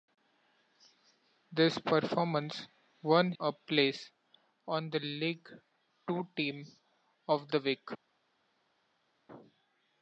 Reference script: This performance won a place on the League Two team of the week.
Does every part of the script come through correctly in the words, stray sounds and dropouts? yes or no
yes